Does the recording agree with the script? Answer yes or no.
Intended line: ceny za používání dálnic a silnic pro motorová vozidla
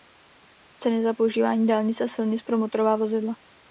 yes